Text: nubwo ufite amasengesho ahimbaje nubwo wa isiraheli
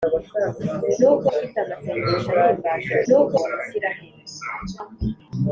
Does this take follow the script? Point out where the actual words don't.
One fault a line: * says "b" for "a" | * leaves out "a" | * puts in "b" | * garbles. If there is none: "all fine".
all fine